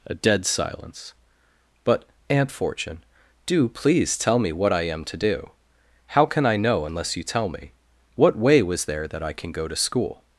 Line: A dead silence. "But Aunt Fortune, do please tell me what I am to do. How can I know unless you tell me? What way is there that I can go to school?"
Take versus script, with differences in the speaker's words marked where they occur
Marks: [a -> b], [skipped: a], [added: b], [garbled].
A dead silence. "But Aunt Fortune, do please tell me what I am to do. How can I know unless you tell me? What way [is -> was] there that I can go to school?"